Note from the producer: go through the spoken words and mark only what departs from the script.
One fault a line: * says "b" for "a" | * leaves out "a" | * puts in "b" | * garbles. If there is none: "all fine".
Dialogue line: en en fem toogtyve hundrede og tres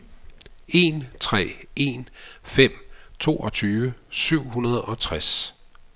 * puts in "tre"
* puts in "syv"